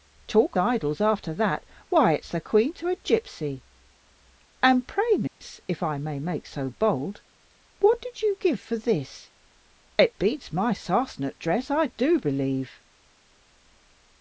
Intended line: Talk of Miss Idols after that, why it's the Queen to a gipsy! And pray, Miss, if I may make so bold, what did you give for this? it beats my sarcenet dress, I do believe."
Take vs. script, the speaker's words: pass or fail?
fail